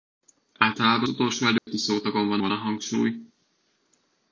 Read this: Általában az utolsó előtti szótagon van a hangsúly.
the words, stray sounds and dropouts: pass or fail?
fail